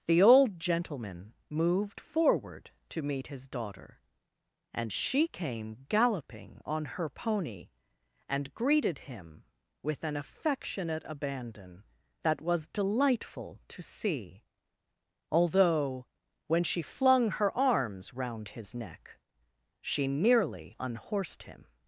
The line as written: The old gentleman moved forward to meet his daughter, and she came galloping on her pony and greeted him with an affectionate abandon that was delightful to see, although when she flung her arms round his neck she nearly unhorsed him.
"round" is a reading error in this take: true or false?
false